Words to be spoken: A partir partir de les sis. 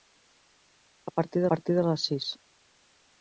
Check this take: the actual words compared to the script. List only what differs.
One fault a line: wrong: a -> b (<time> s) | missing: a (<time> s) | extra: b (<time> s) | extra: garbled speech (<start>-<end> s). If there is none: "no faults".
no faults